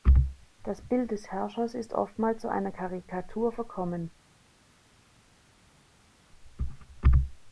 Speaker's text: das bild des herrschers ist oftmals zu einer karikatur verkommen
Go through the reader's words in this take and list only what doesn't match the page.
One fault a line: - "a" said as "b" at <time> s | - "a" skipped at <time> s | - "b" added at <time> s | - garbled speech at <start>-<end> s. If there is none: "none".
none